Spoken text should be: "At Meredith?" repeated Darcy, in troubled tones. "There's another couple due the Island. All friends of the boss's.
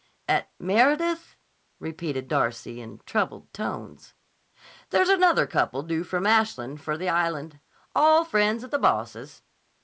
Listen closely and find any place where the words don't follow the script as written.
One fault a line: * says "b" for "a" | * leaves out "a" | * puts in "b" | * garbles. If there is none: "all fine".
* puts in "from Ashland for"